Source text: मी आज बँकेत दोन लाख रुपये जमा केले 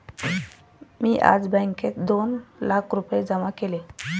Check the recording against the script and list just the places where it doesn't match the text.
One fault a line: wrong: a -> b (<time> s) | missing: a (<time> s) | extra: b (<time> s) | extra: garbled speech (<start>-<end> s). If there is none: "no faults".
no faults